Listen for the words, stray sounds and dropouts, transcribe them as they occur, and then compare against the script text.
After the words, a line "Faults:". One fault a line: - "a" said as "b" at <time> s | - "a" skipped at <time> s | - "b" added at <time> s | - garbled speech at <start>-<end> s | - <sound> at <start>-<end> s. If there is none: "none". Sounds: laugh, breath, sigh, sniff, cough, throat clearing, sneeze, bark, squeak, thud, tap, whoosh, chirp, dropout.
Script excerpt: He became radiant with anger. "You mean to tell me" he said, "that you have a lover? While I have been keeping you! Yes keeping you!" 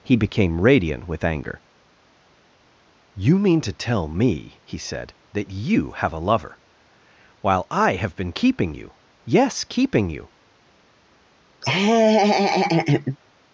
He became radiant with anger. "You mean to tell me" he said, "that you have a lover? While I have been keeping you! Yes keeping you!"
Faults:
- laugh at 11.6-13.2 s